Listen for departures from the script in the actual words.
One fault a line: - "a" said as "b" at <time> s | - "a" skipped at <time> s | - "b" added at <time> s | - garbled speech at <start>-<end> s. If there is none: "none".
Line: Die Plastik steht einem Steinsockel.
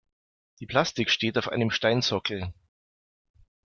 - "auf" added at 1.4 s